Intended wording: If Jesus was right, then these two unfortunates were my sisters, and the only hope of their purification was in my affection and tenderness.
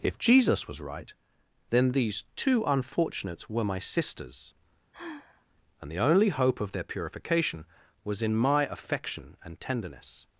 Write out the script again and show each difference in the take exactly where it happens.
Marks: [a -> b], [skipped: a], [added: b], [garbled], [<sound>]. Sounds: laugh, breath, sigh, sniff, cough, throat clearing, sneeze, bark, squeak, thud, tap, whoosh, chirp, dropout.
If Jesus was right, then these two unfortunates were my sisters, [sigh] and the only hope of their purification was in my affection and tenderness.